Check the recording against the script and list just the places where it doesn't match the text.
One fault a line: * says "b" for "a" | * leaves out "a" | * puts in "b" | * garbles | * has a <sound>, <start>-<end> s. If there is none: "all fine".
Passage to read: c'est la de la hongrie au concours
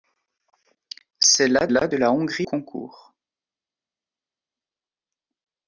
* puts in "la"
* leaves out "au"